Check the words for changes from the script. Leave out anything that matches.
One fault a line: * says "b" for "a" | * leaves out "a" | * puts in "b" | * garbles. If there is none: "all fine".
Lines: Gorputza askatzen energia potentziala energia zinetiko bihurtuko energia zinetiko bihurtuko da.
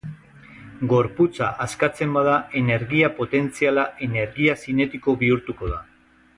* puts in "bada"
* leaves out "energia zinetiko bihurtuko"